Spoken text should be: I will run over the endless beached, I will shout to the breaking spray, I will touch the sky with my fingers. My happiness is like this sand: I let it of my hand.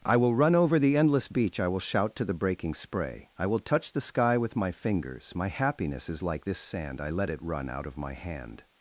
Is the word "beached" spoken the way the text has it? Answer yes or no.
no